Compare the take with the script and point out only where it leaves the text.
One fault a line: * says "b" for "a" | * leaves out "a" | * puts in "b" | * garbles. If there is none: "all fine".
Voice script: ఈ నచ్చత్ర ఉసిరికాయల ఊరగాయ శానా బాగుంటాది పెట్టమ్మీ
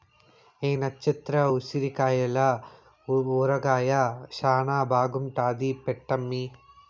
all fine